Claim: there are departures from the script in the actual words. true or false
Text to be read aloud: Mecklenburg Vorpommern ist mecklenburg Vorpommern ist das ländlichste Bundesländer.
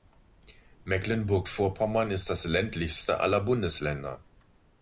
true